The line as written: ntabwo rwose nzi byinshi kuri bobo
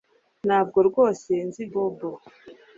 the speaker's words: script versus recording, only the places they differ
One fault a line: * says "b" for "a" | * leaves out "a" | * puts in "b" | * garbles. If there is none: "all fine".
* leaves out "byinshi kuri"